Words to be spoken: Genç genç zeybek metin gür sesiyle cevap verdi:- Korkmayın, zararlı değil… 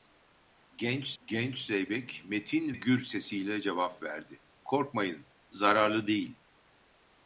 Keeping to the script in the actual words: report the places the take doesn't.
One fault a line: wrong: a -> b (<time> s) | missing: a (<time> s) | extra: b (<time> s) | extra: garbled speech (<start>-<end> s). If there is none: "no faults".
no faults